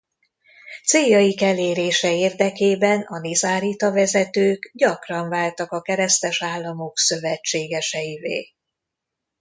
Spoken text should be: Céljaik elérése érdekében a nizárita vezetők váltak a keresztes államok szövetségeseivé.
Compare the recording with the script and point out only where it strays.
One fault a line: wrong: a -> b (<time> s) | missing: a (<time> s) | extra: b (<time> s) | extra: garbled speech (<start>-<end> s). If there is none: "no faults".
extra: gyakran (4.7 s)